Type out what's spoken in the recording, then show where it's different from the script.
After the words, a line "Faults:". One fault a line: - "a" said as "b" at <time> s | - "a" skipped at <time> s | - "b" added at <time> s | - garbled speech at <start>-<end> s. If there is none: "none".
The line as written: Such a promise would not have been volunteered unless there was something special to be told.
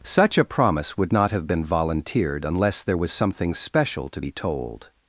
Such a promise would not have been volunteered unless there was something special to be told.
Faults:
none